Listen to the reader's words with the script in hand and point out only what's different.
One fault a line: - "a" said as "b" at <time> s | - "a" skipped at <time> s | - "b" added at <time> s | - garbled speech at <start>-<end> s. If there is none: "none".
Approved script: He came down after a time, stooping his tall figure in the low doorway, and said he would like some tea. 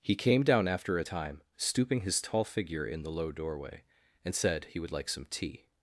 none